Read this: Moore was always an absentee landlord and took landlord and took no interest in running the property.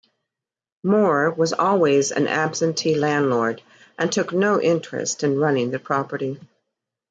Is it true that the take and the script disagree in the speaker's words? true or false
true